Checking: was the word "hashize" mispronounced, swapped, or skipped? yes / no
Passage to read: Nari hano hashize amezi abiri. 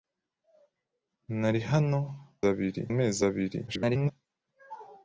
yes